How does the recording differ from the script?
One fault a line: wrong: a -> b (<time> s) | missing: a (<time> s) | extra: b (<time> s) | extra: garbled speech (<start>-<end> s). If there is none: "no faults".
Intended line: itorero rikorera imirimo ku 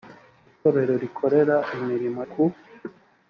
no faults